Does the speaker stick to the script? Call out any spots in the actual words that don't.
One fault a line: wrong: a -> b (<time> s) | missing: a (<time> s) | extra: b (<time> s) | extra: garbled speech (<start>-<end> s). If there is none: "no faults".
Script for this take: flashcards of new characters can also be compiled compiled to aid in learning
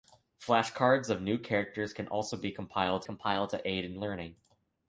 no faults